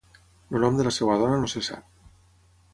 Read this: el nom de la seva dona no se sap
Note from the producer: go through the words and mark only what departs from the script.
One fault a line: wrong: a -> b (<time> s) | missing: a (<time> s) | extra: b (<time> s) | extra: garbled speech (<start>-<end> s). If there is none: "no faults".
no faults